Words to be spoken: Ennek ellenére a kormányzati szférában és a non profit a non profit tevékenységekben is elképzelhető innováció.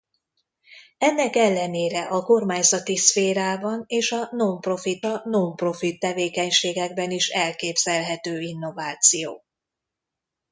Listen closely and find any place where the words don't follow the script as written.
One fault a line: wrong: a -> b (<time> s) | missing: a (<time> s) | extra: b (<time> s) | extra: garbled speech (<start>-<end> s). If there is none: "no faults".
no faults